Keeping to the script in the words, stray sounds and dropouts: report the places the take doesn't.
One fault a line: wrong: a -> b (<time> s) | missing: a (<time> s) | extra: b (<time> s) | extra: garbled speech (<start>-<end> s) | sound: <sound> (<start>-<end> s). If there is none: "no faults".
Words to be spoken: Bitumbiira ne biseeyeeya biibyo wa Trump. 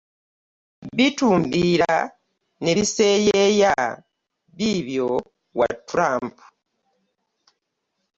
no faults